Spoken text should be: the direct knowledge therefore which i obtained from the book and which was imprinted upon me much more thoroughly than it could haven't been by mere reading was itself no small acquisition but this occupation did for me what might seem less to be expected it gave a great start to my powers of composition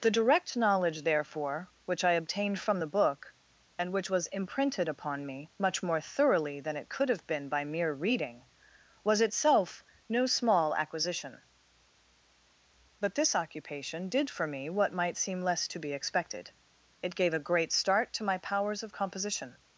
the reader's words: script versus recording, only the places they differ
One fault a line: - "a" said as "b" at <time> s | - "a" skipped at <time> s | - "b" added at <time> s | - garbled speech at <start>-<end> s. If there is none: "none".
- "haven't" said as "have" at 7.1 s